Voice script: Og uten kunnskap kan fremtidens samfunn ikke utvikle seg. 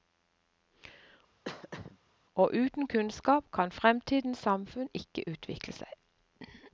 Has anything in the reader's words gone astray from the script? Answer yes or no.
no